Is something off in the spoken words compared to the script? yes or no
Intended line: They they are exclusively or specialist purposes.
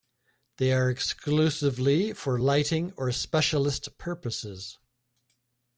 yes